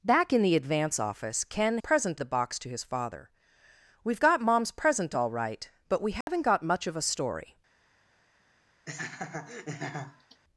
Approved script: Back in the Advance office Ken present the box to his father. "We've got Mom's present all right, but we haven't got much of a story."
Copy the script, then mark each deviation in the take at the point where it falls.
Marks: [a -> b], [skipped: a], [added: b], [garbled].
Back in the Advance office Ken present the box to his father. "We've got Mom's present all right, but we haven't got much of a story."